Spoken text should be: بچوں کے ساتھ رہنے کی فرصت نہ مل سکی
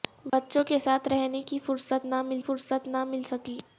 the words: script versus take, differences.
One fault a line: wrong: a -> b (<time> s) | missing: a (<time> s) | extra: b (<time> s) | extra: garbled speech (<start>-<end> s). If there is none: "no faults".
extra: فرصت نہ مل (2.4 s)